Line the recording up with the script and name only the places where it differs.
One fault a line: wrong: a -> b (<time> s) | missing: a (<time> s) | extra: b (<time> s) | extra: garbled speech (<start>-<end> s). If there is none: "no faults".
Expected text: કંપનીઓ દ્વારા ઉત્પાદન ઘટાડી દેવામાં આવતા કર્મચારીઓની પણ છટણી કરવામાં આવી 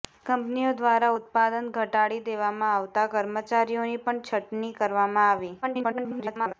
extra: garbled speech (5.6-6.5 s)